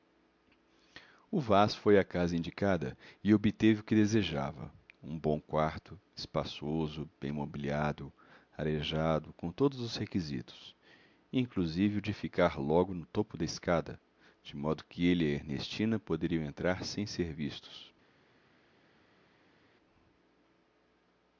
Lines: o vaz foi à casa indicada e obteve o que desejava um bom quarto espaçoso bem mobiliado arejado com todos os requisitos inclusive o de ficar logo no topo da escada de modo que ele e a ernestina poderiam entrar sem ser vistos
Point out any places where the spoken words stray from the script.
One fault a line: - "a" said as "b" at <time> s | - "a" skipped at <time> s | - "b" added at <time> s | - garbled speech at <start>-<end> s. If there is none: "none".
none